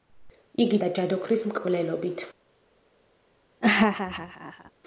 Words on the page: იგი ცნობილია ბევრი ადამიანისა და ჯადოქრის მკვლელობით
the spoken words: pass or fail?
fail